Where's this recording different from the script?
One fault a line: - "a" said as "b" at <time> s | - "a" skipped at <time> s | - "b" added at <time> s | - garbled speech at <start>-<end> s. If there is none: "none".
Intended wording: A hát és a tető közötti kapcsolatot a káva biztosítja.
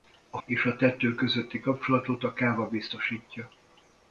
- "hát" skipped at 0.4 s